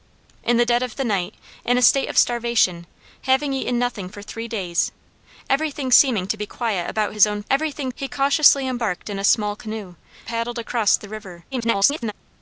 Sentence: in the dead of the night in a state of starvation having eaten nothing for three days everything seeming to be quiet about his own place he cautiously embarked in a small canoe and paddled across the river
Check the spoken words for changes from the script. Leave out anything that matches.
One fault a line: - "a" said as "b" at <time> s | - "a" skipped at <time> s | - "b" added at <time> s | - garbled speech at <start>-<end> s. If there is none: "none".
- "place" said as "everything" at 7.5 s
- "and" skipped at 9.9 s
- garbled speech at 11.5-12.1 s